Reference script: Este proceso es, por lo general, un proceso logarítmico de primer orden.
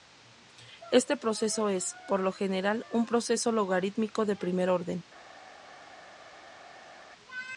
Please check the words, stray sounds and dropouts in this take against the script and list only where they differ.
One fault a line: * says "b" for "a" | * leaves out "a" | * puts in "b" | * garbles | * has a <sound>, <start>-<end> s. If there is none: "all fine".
all fine